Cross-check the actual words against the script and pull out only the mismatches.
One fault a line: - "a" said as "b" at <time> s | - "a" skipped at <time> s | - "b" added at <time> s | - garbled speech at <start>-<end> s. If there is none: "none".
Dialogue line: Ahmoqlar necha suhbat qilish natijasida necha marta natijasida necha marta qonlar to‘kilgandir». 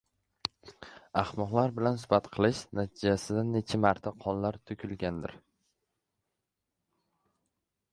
- "necha" said as "bilan" at 1.8 s
- "natijasida necha marta" skipped at 4.2 s